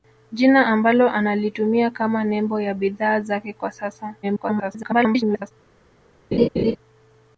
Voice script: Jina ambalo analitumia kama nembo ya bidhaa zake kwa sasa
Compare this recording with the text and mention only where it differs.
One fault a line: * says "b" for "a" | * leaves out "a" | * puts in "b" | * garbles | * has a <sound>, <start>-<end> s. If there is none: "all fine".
* garbles
* has a laugh, 6.3-6.8 s